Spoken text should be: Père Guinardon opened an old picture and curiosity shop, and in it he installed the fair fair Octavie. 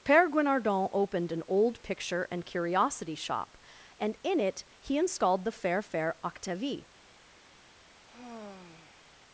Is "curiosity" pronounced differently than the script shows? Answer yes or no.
no